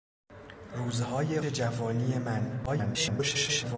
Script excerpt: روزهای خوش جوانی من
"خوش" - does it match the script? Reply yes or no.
no